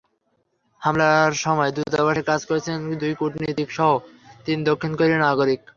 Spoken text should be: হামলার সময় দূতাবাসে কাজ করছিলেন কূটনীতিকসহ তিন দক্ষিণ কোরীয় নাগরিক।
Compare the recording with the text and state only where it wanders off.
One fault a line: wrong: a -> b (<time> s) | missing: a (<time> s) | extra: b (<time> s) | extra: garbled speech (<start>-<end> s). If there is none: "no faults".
extra: দুই (3.0 s)